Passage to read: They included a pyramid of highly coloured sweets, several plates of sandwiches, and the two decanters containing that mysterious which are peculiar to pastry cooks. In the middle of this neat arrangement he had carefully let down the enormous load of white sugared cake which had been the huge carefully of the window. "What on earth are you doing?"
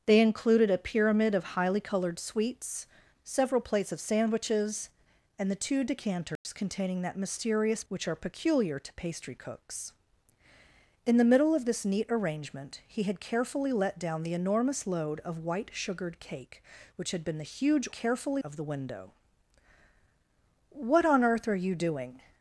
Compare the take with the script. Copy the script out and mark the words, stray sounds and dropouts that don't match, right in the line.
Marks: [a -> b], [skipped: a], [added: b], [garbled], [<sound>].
They included a pyramid of highly coloured sweets, several plates of sandwiches, and the two decanters [dropout] containing that mysterious which are peculiar to pastry cooks. In the middle of this neat arrangement he had carefully let down the enormous load of white sugared cake which had been the huge carefully of the window. "What on earth are you doing?"